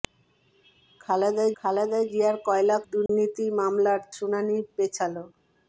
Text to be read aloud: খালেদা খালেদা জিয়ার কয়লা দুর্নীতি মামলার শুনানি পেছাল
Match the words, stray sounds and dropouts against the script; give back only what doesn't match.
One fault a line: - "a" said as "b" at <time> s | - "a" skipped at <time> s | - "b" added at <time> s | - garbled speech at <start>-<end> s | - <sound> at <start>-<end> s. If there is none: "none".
- dropout at 3.1-3.1 s